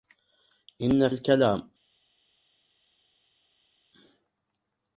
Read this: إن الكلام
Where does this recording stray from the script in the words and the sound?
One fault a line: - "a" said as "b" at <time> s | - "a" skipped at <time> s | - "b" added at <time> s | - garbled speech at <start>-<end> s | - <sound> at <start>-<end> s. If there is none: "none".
none